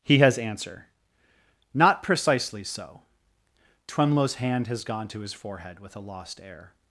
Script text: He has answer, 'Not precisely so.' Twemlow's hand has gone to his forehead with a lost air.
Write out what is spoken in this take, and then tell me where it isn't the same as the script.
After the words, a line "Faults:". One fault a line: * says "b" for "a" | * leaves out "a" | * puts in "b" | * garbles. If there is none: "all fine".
He has answer, 'Not precisely so.' Twemlow's hand has gone to his forehead with a lost air.
Faults:
all fine